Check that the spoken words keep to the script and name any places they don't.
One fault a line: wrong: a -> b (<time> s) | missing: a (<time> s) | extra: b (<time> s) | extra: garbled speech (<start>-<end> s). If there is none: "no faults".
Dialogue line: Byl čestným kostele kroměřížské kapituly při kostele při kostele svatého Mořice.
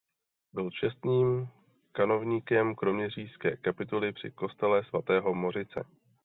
wrong: kostele -> kanovníkem (1.9 s)
missing: při kostele (4.8 s)